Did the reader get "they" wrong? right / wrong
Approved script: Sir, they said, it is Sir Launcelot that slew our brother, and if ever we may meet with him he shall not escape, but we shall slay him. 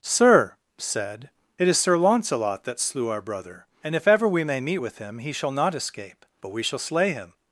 wrong